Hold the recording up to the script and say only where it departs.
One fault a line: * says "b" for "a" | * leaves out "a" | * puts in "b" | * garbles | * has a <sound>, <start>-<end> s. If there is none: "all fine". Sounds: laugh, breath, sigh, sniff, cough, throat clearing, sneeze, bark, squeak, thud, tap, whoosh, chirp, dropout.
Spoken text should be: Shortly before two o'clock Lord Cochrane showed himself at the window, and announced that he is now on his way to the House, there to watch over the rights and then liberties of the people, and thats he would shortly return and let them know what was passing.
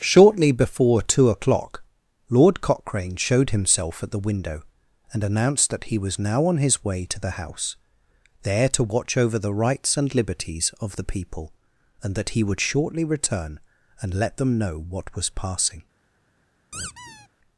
* says "was" for "is"
* leaves out "then"
* says "that" for "thats"
* has a squeak, 16.7-17.3 s